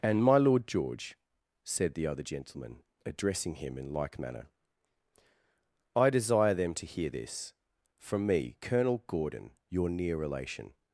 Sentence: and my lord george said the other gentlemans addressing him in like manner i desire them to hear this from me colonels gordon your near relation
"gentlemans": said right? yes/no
no